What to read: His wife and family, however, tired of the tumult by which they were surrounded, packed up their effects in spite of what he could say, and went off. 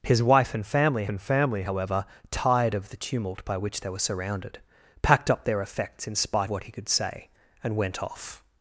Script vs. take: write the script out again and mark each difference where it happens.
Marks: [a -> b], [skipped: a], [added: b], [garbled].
His wife and family, [added: and family] however, tired of the tumult by which they were surrounded, packed up their effects in spite [skipped: of] what he could say, and went off.